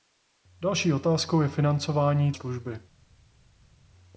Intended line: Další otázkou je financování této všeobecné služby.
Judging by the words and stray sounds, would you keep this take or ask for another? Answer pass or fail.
fail